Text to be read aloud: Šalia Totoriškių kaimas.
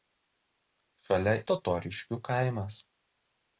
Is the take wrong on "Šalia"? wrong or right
right